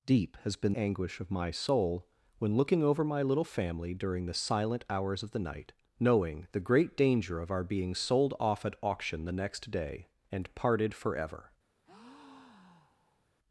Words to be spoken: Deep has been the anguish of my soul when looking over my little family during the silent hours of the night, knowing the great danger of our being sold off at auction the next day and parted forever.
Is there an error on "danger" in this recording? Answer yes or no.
no